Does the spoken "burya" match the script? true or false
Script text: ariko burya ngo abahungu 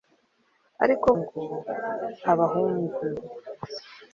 false